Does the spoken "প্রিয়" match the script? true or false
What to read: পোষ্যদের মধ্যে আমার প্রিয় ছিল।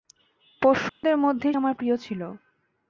true